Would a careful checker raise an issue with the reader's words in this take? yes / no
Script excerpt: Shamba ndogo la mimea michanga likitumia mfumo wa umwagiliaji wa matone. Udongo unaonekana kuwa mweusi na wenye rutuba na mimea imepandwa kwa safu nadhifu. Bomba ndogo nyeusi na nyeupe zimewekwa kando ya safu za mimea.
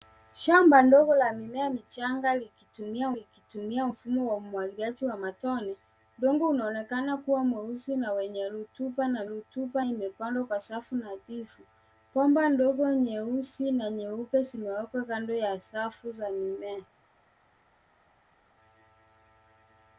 yes